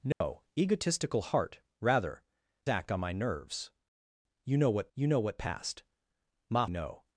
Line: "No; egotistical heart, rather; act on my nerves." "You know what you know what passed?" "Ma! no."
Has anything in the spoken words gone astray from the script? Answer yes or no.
no